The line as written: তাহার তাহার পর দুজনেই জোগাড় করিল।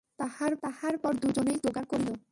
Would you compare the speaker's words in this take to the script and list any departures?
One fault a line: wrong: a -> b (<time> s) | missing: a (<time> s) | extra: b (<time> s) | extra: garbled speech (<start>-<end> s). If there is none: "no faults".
no faults